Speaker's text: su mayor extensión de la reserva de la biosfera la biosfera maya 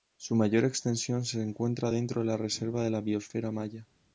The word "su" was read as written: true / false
true